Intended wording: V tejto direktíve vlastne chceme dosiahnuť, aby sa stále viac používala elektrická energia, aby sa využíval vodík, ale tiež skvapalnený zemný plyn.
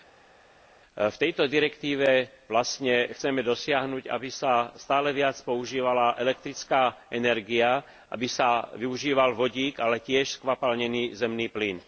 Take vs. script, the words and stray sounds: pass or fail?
pass